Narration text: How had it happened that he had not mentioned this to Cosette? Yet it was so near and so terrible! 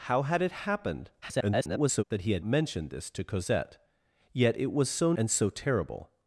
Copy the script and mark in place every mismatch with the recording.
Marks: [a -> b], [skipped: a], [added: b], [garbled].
How had it happened [garbled] that he had [skipped: not] mentioned this to Cosette? Yet it was so [skipped: near] and so terrible!